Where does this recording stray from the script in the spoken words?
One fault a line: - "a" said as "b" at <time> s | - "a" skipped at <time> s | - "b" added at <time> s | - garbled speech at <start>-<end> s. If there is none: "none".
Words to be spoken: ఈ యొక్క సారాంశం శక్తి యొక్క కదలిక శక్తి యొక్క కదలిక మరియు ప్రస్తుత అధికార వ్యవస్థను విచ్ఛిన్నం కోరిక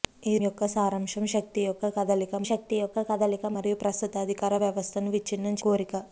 none